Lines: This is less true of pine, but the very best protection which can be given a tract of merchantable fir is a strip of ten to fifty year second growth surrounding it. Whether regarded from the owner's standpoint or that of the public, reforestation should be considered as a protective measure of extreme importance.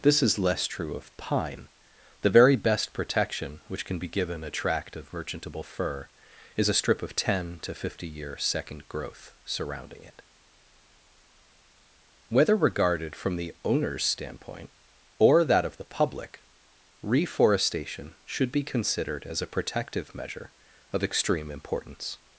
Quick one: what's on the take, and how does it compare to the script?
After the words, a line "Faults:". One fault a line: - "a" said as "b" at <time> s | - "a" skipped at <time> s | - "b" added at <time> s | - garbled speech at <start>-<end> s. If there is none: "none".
This is less true of pine, the very best protection which can be given a tract of merchantable fir is a strip of ten to fifty year second growth surrounding it. Whether regarded from the owner's standpoint or that of the public, reforestation should be considered as a protective measure of extreme importance.
Faults:
- "but" skipped at 1.7 s